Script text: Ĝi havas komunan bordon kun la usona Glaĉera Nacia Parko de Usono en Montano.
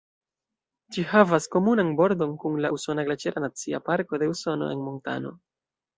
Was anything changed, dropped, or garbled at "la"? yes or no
no